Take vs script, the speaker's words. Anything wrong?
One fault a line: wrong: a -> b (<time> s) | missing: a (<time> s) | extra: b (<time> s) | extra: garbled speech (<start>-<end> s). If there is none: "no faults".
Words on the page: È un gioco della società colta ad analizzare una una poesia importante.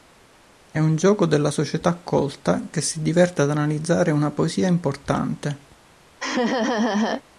extra: che si diverte (2.7 s)
missing: una (4.3 s)